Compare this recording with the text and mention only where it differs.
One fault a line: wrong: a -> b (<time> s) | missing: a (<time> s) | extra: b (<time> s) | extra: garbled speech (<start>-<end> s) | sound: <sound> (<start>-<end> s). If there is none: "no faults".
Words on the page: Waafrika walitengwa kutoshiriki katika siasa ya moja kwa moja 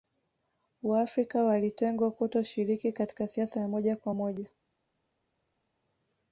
no faults